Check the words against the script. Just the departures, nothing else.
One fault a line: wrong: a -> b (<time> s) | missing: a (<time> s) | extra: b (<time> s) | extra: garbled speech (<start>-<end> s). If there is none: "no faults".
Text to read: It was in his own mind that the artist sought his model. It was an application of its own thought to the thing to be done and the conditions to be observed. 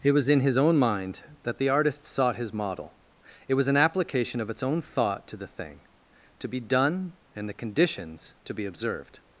no faults